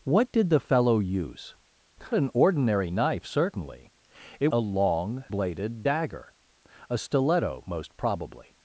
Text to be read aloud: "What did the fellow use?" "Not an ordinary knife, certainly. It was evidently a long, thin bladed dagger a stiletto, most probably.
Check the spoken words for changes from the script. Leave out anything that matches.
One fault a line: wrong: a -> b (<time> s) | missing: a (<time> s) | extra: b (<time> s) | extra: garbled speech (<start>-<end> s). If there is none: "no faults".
missing: Not (1.6 s)
missing: was evidently (4.5 s)
missing: thin (5.2 s)